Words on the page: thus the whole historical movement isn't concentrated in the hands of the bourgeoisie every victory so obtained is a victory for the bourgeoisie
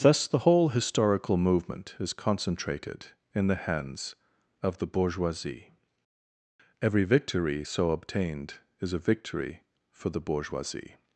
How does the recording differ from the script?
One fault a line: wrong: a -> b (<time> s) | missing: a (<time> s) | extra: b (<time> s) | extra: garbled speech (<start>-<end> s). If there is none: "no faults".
wrong: isn't -> is (2.0 s)